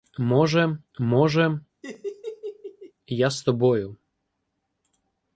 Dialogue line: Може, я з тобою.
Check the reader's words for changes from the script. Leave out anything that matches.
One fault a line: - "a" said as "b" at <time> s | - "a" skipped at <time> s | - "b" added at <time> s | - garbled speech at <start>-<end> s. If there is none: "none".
- "може" added at 1.0 s